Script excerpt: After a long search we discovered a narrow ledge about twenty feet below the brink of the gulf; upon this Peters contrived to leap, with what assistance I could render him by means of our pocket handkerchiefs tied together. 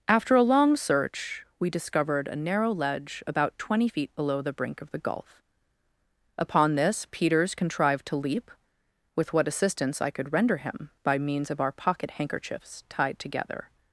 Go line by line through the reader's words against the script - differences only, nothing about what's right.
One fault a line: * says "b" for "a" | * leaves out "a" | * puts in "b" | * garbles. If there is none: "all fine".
all fine